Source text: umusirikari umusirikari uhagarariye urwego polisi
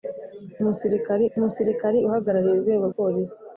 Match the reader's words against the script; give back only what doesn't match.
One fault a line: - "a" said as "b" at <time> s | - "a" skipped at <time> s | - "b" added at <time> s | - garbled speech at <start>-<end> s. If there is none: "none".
none